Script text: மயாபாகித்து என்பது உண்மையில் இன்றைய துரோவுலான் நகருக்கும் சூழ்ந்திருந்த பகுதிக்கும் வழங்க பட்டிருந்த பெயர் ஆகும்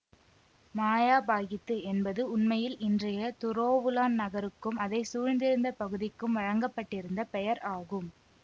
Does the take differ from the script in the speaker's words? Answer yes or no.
yes